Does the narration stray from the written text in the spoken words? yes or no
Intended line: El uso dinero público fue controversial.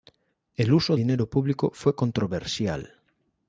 no